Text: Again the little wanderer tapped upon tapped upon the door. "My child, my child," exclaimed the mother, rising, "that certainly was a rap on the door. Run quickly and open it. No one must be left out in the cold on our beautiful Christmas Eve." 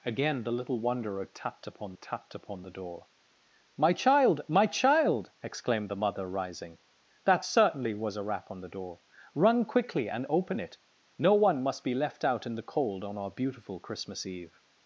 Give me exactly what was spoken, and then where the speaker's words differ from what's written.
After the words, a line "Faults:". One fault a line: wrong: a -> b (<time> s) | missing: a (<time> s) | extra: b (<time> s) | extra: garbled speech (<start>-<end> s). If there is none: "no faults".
Again the little wanderer tapped upon tapped upon the door. "My child, my child," exclaimed the mother, rising, "that certainly was a rap on the door. Run quickly and open it. No one must be left out in the cold on our beautiful Christmas Eve."
Faults:
no faults